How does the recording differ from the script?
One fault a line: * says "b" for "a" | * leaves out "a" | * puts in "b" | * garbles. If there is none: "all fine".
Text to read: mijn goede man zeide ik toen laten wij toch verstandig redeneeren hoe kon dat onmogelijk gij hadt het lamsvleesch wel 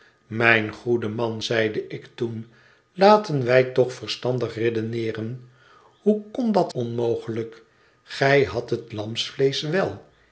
all fine